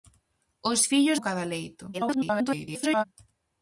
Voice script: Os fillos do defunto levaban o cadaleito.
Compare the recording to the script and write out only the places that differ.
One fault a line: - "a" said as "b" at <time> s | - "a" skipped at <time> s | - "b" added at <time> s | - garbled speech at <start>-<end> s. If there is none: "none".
- "do defunto levaban" skipped at 1.2 s
- garbled speech at 1.9-3.0 s